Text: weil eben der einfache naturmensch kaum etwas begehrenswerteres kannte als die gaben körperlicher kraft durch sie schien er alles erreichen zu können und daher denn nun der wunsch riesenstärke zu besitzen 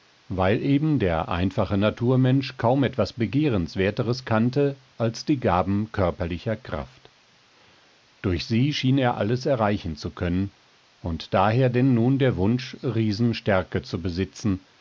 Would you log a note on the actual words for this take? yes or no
no